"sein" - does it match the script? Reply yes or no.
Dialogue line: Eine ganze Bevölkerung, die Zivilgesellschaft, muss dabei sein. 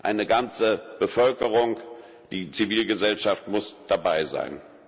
yes